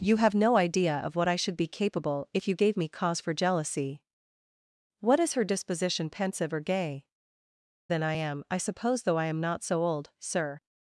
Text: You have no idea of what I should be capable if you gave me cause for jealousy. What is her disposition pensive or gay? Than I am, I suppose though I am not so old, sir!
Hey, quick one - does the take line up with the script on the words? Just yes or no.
yes